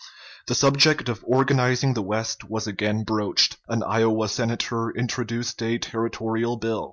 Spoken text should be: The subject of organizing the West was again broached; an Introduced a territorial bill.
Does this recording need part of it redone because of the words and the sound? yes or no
yes